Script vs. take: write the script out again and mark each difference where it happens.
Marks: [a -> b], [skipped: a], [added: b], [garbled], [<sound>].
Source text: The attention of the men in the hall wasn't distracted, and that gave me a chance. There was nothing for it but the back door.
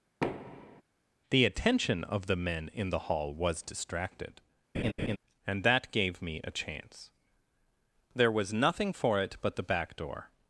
[thud] The attention of the men in the hall [wasn't -> was] distracted, [laugh] and that gave me a chance. There was nothing for it but the back door.